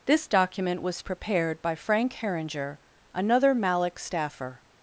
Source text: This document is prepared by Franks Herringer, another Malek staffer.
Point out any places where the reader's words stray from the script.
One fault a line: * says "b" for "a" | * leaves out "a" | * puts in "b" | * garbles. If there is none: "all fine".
* says "was" for "is"
* says "Frank" for "Franks"